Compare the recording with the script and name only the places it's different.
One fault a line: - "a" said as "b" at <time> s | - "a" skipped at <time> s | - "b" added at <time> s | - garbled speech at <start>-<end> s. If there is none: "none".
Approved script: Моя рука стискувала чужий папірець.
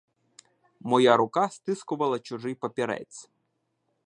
none